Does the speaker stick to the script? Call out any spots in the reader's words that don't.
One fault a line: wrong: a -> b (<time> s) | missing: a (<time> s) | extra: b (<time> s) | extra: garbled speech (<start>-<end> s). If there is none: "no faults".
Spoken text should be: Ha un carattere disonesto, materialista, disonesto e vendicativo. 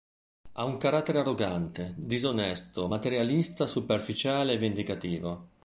extra: arrogante (1.2 s)
wrong: disonesto -> superficiale (3.7 s)